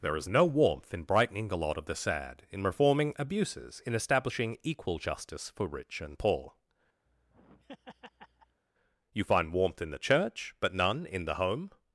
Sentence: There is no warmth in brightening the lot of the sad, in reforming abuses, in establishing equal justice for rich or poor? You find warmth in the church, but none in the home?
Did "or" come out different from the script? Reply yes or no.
yes